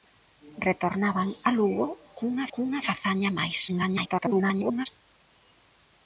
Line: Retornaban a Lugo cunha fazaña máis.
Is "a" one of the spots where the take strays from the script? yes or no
no